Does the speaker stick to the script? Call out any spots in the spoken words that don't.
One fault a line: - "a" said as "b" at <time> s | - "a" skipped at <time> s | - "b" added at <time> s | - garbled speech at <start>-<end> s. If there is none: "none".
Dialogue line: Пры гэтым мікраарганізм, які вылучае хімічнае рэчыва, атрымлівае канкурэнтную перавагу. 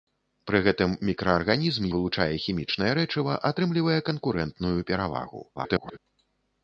- "які" skipped at 1.9 s
- garbled speech at 5.6-6.0 s